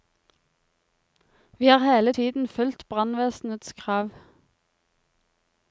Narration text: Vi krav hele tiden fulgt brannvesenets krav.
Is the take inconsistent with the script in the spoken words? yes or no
yes